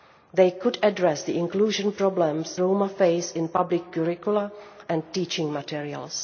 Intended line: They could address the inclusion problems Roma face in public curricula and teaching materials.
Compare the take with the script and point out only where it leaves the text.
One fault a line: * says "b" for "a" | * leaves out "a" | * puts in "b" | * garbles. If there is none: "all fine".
all fine